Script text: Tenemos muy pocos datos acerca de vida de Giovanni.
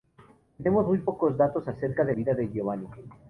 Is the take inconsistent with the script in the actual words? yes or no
no